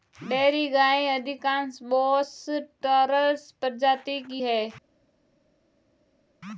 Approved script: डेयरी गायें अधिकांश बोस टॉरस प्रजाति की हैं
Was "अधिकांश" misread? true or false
false